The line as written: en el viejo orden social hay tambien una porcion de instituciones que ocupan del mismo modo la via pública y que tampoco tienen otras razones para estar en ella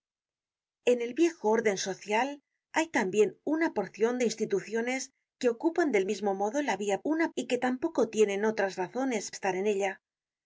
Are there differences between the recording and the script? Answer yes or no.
yes